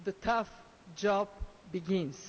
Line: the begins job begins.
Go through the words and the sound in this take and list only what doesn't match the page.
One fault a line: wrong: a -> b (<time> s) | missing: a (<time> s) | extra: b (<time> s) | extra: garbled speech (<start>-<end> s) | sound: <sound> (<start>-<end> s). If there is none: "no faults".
wrong: begins -> tough (0.1 s)